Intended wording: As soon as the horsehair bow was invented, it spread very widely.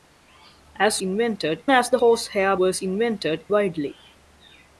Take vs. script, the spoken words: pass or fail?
fail